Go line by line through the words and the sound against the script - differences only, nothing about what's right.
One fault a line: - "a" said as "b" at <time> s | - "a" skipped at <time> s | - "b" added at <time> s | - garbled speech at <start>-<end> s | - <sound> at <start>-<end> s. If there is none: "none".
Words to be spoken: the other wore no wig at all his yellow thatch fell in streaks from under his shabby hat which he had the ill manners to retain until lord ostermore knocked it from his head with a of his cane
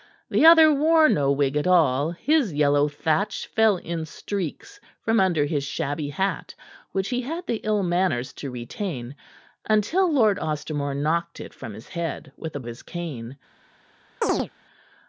- chirp at 14.2-14.5 s